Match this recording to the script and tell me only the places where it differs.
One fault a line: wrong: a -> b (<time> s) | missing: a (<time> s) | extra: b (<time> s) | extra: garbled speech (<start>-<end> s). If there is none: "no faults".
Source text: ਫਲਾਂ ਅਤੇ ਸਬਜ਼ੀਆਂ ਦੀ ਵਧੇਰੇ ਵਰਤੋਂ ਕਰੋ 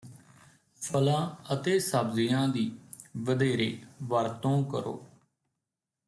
no faults